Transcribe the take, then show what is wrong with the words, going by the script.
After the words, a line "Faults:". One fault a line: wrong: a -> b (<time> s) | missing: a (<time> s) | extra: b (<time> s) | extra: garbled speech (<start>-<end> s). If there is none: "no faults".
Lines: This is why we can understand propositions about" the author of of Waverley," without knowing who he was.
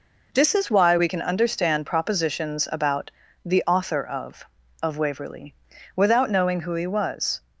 This is why we can understand propositions about" the author of of Waverley," without knowing who he was.
Faults:
no faults